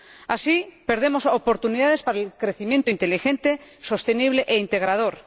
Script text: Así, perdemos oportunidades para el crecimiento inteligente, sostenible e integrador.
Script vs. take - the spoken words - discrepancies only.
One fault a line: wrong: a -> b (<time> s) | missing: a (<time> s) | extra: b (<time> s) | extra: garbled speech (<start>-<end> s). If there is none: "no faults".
no faults